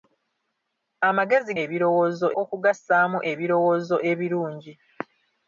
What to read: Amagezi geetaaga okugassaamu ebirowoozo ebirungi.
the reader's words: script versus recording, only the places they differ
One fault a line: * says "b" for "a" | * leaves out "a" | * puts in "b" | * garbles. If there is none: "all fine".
* says "ebirowoozo" for "geetaaga"